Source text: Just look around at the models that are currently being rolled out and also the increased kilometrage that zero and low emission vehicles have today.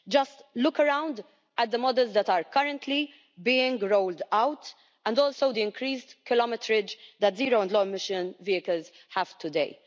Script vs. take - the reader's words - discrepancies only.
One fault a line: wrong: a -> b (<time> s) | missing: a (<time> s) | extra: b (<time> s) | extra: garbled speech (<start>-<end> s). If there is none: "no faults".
no faults